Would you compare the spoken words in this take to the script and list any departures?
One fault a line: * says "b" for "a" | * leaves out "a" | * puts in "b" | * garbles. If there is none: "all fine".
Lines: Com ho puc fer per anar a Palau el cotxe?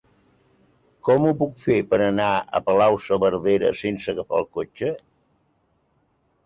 * puts in "saverdera sense agafar"